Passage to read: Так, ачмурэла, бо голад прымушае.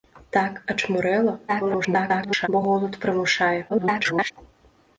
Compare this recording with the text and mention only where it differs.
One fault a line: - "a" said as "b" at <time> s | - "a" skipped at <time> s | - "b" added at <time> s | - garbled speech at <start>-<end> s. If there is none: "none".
- garbled speech at 1.5-2.5 s
- garbled speech at 3.7-4.3 s